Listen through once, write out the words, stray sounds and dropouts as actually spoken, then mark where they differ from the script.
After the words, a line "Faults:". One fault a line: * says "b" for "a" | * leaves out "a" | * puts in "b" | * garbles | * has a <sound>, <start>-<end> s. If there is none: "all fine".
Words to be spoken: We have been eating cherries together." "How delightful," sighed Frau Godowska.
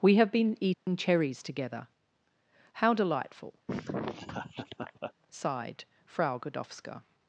We have been eating cherries together." "How delightful," sighed Frau Godowska.
Faults:
* has a dropout, 0.7-0.9 s
* has a laugh, 3.7-5.1 s